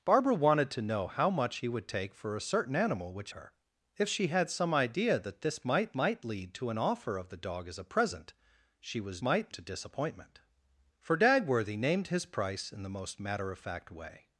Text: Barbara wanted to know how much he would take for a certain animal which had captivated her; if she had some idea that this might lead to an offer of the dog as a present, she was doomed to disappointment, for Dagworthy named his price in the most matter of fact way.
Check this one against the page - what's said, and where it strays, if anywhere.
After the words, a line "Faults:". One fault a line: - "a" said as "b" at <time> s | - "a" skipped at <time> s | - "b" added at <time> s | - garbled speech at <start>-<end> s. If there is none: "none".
Barbara wanted to know how much he would take for a certain animal which her; if she had some idea that this might might lead to an offer of the dog as a present, she was might to disappointment, for Dagworthy named his price in the most matter of fact way.
Faults:
- "had captivated" skipped at 3.3 s
- "might" added at 5.9 s
- "doomed" said as "might" at 9.2 s